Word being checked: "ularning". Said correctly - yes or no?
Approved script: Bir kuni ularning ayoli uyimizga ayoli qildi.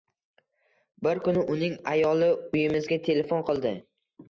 no